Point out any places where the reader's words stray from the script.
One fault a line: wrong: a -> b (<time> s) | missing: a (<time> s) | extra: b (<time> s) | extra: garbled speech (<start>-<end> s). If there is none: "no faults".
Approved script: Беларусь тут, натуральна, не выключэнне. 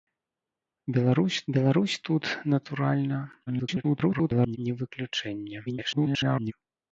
extra: беларусь (1.5 s)
extra: garbled speech (3.5-4.6 s)
extra: garbled speech (5.7-6.5 s)